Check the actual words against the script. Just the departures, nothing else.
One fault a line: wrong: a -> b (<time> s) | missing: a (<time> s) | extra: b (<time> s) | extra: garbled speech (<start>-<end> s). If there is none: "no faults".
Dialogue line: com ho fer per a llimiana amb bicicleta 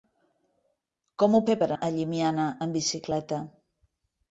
no faults